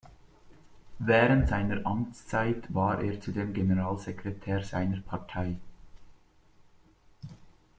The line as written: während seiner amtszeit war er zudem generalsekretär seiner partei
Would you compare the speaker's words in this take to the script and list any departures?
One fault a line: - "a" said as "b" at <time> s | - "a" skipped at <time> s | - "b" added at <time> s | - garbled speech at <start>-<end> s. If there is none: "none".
none